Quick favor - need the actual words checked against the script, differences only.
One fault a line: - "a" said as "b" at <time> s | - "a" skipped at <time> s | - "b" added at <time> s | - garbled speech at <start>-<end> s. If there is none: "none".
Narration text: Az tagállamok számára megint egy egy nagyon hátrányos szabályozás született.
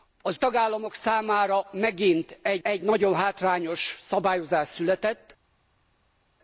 none